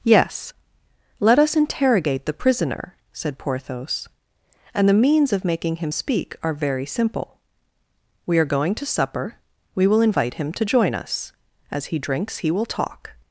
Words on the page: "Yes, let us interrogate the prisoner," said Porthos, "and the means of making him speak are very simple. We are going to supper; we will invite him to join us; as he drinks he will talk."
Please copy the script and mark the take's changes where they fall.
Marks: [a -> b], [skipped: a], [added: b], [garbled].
"Yes, let us interrogate the prisoner," said Porthos, "and the means of making him speak are very simple. We are going to supper; we will invite him to join us; as he drinks he will talk."